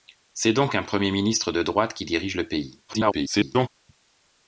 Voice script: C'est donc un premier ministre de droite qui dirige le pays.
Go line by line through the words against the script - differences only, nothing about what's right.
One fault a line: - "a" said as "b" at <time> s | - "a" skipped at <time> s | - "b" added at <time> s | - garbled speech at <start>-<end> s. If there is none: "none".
- garbled speech at 2.9-3.7 s